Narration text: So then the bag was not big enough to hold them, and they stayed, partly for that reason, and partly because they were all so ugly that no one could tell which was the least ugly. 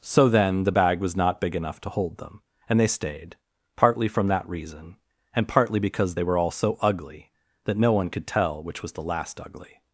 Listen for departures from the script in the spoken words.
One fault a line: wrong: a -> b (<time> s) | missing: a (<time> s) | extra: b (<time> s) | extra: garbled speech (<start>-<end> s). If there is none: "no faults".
wrong: for -> from (4.1 s)
wrong: least -> last (9.0 s)